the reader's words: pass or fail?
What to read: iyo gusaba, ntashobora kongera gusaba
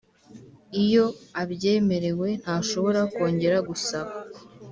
fail